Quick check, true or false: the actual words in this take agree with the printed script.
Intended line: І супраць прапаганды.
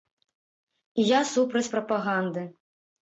false